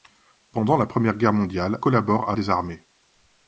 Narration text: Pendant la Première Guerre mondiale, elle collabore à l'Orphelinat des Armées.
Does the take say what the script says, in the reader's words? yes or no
no